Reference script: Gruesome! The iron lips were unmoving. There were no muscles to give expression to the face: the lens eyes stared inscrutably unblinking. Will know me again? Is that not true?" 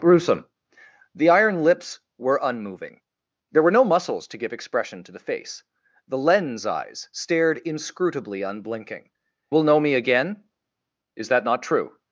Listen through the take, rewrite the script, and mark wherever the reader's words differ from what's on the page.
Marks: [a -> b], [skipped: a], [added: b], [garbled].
Gruesome! The iron lips were unmoving. There were no muscles to give expression to the face: the lens eyes stared inscrutably unblinking. Will know me again? Is that not true?"